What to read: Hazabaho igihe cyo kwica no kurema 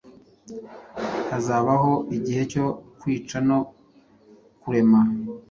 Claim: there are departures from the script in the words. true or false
false